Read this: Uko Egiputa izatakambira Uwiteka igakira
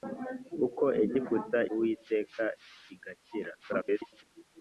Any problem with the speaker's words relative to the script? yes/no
yes